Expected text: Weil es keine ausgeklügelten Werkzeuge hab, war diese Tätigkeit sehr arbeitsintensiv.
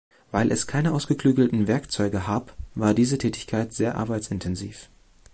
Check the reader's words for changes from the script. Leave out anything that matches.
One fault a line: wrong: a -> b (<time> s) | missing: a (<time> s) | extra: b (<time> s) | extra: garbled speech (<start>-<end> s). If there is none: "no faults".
no faults